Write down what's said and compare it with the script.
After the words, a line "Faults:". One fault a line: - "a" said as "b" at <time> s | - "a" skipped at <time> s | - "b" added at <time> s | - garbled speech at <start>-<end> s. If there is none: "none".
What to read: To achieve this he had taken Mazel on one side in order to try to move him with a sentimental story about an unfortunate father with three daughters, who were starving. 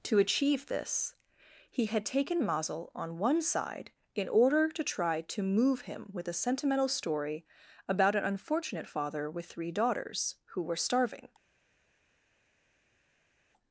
To achieve this he had taken Mazel on one side in order to try to move him with a sentimental story about an unfortunate father with three daughters, who were starving.
Faults:
none